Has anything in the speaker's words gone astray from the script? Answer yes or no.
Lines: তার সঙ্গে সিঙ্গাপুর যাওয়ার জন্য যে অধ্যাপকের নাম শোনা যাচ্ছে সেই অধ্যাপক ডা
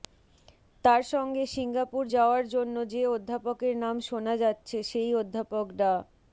no